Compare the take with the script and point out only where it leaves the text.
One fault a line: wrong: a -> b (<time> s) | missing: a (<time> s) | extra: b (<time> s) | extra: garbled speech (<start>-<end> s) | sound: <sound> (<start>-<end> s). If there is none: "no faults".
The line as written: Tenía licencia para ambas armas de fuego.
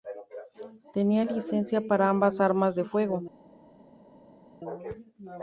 no faults